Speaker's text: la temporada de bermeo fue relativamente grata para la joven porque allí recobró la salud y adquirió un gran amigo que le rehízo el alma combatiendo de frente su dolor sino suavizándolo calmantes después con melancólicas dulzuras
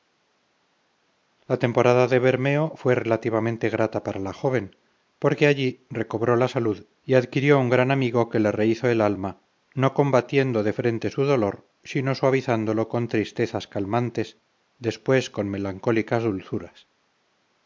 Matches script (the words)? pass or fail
fail